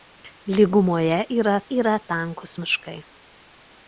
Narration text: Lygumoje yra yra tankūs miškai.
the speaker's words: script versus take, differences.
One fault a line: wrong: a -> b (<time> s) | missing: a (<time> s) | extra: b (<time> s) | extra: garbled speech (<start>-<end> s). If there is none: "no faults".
no faults